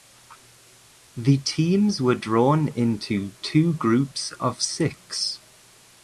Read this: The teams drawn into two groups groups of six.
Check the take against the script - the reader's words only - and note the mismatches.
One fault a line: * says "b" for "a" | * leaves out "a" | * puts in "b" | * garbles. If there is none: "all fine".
* puts in "were"
* leaves out "groups"